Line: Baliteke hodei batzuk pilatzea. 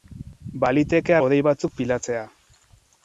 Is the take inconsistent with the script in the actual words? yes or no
no